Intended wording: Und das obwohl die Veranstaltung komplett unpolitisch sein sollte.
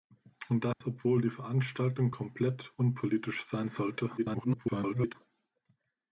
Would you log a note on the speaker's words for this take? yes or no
yes